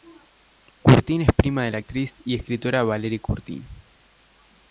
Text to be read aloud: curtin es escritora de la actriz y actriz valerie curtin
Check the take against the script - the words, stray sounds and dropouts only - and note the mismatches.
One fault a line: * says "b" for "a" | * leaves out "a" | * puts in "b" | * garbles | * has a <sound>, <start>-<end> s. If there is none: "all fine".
* says "prima" for "escritora"
* says "escritora" for "actriz"